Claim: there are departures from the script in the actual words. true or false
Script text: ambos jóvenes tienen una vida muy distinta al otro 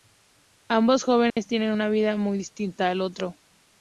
false